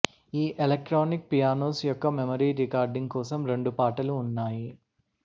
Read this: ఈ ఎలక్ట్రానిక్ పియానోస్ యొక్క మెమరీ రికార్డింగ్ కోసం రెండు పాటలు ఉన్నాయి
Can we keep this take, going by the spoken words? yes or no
yes